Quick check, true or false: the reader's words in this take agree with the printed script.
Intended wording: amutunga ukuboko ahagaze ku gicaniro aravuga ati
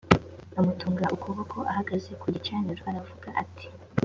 true